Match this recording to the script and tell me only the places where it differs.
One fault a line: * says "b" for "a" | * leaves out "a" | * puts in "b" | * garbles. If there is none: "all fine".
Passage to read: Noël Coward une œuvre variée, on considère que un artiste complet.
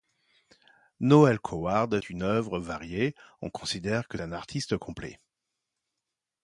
all fine